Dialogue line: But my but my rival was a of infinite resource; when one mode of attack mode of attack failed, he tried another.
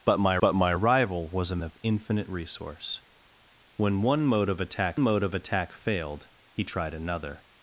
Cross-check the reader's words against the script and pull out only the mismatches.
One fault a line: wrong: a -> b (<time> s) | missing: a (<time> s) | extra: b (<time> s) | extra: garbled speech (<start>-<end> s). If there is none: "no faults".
no faults